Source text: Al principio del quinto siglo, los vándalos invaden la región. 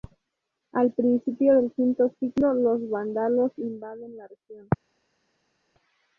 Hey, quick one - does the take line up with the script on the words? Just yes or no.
yes